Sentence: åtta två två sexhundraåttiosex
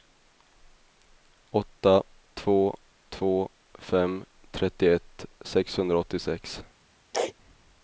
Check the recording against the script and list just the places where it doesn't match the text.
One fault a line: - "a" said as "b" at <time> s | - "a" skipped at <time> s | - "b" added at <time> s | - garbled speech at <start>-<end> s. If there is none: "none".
- "fem trettioett" added at 3.8 s